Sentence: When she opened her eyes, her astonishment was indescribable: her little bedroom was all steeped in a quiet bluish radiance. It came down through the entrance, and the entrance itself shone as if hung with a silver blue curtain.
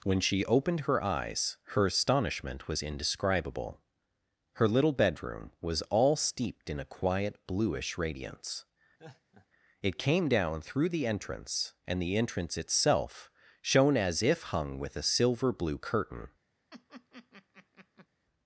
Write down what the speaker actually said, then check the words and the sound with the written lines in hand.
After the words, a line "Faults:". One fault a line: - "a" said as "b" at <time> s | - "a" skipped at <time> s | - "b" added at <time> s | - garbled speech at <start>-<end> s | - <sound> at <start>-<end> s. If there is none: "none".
When she opened her eyes, her astonishment was indescribable: her little bedroom was all steeped in a quiet bluish radiance. It came down through the entrance, and the entrance itself shone as if hung with a silver blue curtain.
Faults:
- laugh at 9.0-9.5 s
- laugh at 16.7-18.1 s